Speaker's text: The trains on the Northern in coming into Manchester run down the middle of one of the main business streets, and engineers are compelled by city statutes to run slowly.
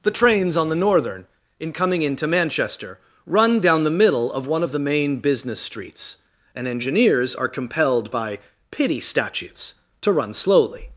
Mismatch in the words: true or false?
true